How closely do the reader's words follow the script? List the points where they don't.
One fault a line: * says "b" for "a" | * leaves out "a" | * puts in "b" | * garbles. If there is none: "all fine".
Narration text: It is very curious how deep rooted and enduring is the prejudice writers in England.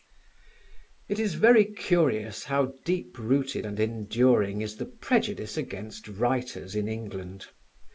* puts in "against"